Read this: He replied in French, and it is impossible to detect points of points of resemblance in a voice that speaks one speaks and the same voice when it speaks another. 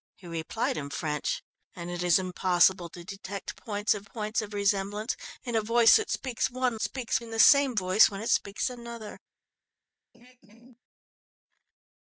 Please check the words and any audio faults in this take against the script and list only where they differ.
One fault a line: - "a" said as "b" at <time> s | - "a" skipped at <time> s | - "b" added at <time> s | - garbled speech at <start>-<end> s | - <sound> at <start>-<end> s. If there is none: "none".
- throat clearing at 10.1-10.8 s